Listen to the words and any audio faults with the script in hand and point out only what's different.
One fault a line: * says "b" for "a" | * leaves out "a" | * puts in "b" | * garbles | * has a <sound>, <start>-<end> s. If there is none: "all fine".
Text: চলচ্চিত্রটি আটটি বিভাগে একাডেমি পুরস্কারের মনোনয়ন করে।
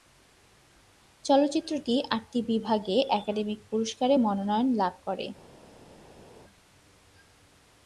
* puts in "লাভ"